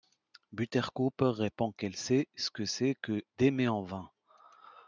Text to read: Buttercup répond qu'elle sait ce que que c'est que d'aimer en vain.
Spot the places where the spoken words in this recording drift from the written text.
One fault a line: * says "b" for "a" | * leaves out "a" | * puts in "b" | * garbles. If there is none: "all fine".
* leaves out "que"